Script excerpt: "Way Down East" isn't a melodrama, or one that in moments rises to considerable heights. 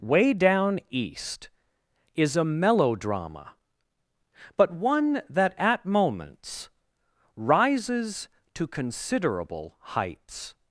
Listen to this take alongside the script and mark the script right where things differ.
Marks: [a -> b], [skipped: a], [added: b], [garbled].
"Way Down East" [isn't -> is] a melodrama, [or -> but] one that [in -> at] moments rises to considerable heights.